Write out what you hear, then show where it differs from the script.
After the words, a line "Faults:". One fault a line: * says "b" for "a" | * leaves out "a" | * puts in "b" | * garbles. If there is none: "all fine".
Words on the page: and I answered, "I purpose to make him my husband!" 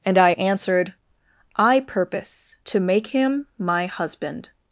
and I answered, "I purpose to make him my husband!"
Faults:
all fine